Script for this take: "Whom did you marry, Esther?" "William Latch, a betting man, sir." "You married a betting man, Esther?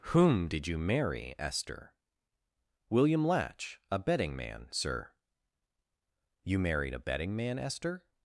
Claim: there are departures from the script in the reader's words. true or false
false